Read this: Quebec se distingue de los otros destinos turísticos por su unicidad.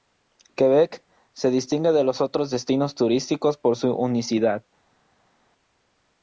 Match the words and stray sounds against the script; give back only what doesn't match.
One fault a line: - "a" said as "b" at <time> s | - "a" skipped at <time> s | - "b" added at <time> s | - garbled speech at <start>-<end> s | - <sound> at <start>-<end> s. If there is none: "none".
none